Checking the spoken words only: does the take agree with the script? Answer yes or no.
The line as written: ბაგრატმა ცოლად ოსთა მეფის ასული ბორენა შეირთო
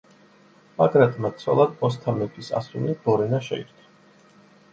yes